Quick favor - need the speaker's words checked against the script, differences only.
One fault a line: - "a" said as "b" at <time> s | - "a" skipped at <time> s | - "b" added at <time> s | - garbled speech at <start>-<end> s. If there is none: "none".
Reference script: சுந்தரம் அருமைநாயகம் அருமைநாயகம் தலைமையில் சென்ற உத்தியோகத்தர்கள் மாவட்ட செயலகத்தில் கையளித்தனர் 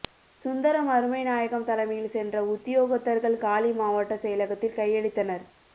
- "அருமைநாயகம்" skipped at 1.7 s
- "காலி" added at 3.4 s